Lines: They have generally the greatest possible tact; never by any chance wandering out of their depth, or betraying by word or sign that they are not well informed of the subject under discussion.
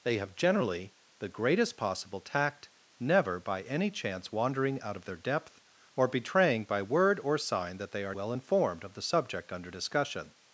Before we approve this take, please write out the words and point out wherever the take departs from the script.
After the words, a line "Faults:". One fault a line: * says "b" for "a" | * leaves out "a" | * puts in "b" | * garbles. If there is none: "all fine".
They have generally the greatest possible tact; never by any chance wandering out of their depth, or betraying by word or sign that they are well informed of the subject under discussion.
Faults:
* leaves out "not"